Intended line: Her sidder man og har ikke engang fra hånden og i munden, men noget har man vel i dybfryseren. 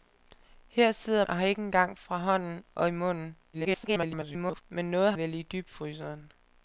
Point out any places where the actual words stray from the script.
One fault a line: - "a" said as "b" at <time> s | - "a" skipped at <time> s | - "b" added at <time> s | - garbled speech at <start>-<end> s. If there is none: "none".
- "man" skipped at 1.2 s
- garbled speech at 3.5-4.6 s
- "har man" skipped at 5.1 s